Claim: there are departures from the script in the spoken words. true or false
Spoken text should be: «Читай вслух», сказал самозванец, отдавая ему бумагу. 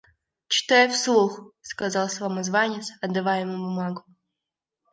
false